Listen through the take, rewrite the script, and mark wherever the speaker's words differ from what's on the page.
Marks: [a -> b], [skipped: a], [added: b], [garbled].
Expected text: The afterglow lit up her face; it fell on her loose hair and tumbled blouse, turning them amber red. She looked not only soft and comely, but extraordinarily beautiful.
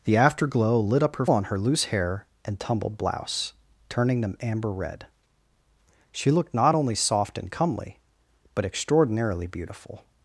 The afterglow lit up her [skipped: face; it fell] on her loose hair and tumbled blouse, turning them amber red. She looked not only soft and comely, but extraordinarily beautiful.